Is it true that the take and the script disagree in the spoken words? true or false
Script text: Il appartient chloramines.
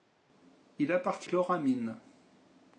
false